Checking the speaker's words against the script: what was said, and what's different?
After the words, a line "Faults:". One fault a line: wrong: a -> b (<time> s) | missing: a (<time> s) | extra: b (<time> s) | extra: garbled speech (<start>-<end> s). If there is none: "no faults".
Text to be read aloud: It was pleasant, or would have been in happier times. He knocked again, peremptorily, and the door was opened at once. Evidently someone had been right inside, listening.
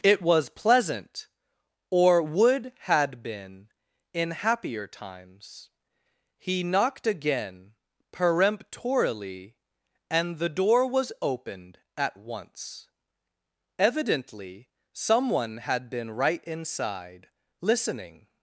It was pleasant, or would had been in happier times. He knocked again, peremptorily, and the door was opened at once. Evidently someone had been right inside, listening.
Faults:
wrong: have -> had (2.8 s)